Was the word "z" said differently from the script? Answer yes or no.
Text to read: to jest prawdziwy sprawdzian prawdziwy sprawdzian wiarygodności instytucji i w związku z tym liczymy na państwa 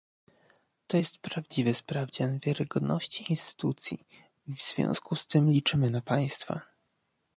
no